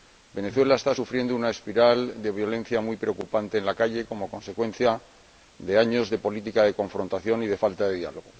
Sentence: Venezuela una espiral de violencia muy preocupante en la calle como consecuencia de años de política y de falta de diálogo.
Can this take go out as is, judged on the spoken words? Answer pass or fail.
fail